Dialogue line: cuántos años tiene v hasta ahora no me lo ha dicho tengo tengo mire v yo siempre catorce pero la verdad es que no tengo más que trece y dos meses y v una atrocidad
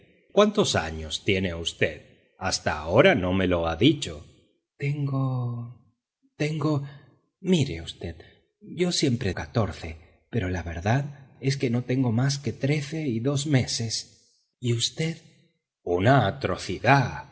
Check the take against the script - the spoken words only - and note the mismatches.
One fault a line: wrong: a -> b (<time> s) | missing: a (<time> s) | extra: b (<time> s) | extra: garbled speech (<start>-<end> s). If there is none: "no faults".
no faults